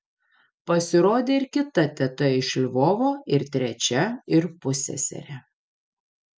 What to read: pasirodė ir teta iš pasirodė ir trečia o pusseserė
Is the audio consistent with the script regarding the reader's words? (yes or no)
no